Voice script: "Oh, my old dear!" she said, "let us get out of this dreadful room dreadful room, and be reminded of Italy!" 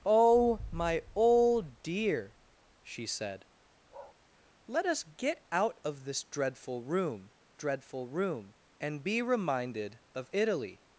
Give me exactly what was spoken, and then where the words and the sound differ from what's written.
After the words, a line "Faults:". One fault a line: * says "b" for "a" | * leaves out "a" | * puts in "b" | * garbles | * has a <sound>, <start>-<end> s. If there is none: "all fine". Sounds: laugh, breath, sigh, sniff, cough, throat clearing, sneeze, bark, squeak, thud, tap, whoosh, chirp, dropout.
"Oh, my old dear!" she said, "let us get out of this dreadful room dreadful room, and be reminded of Italy!"
Faults:
* has a bark, 3.9-4.2 s